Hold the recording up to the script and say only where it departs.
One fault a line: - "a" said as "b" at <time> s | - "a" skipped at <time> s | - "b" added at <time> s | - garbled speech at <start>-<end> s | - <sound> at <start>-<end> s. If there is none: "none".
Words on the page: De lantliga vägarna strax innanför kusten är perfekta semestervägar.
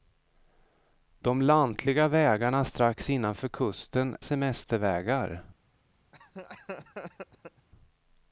- "är perfekta" skipped at 4.2 s
- laugh at 6.1-7.7 s